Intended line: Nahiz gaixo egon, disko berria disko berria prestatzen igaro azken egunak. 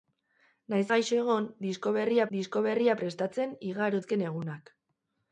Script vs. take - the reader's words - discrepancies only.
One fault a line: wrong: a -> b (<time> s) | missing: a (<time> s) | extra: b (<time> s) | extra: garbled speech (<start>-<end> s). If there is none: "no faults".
no faults